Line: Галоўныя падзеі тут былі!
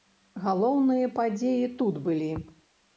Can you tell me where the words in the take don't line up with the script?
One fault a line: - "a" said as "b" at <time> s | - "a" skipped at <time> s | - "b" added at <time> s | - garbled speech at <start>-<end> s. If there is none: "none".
none